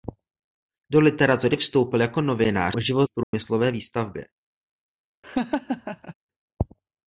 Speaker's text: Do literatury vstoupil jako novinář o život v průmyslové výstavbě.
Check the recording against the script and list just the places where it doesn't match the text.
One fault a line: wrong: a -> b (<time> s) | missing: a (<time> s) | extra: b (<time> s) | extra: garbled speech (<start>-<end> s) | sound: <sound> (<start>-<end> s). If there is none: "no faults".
sound: dropout (3.2-3.3 s)
sound: laugh (5.2-6.1 s)